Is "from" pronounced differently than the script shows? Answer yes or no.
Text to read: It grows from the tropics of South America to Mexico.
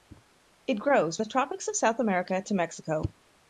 yes